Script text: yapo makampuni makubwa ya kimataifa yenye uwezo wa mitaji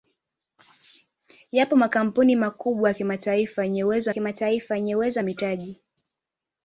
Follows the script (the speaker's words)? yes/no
no